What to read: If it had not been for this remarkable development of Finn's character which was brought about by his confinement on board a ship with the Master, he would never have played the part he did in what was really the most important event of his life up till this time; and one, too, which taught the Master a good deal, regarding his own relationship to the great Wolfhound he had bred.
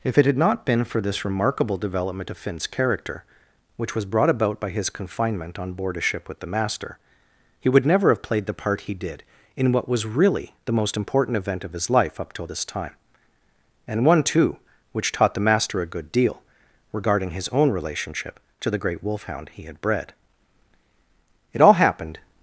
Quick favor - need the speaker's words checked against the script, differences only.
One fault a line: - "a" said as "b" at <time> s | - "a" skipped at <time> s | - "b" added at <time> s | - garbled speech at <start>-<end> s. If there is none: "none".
- "It all happened" added at 21.5 s